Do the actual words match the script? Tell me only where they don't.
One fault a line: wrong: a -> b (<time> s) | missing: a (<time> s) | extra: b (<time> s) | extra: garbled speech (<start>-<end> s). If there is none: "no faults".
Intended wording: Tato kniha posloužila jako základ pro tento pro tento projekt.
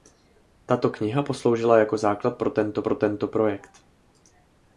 no faults